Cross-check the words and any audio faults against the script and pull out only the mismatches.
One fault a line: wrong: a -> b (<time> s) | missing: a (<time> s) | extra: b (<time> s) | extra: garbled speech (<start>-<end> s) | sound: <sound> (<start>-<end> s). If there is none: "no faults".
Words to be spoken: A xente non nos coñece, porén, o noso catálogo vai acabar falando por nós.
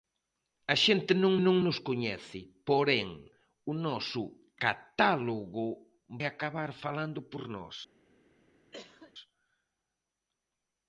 extra: non (1.5 s)
missing: vai (5.7 s)
sound: cough (8.7-9.1 s)